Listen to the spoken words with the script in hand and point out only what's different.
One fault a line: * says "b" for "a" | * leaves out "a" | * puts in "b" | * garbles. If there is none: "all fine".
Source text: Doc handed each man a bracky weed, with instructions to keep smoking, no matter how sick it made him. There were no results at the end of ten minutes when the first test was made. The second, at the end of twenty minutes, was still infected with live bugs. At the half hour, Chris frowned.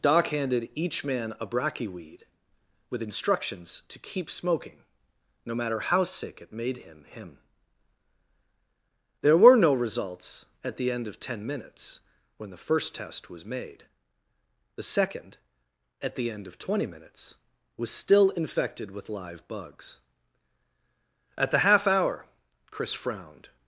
* puts in "him"